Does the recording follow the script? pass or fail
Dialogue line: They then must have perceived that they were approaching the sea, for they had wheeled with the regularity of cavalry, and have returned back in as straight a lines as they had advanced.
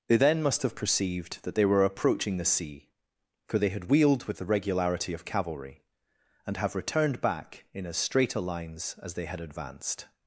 pass